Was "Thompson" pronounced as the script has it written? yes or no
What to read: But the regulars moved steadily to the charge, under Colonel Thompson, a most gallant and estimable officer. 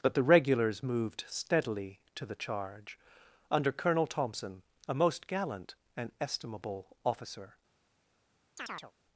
yes